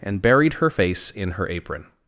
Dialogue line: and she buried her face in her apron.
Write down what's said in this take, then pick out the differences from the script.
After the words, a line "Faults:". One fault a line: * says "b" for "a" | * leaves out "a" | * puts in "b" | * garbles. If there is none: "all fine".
and buried her face in her apron.
Faults:
* leaves out "she"